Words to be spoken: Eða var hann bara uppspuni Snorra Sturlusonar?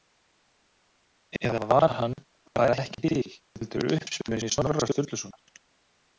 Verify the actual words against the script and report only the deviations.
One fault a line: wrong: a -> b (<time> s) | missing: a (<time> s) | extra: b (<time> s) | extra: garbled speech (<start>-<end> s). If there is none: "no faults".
extra: ekki til heldur (2.9 s)